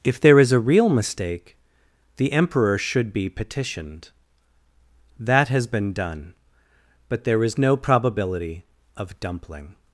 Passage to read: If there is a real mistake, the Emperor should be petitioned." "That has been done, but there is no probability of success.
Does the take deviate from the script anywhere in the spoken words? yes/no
yes